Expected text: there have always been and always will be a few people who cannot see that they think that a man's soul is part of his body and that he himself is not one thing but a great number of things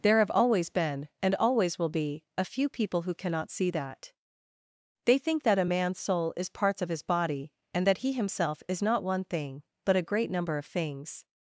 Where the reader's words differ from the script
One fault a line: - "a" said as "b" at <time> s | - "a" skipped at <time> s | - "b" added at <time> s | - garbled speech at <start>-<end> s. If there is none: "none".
- "part" said as "parts" at 6.5 s